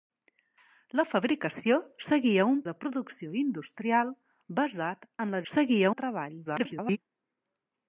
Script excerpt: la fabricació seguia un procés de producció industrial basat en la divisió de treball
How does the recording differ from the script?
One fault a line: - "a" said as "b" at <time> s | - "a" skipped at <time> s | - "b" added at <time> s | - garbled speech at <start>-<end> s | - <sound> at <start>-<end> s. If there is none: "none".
- "procés" skipped at 2.6 s
- "divisió" said as "seguia" at 5.5 s
- garbled speech at 6.5-7.0 s